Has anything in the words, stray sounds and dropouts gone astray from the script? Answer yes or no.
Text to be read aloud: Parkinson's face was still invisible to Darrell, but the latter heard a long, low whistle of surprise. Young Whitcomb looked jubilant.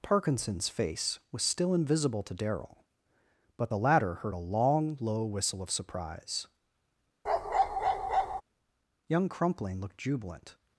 yes